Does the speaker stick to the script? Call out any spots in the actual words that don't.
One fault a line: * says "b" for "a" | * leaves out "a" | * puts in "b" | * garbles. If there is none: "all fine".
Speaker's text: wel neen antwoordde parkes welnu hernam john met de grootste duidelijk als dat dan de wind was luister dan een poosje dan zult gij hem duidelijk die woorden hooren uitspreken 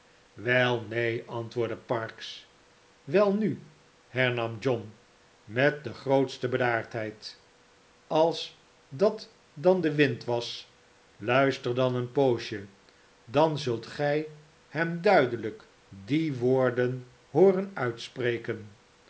* says "bedaardheid" for "duidelijk"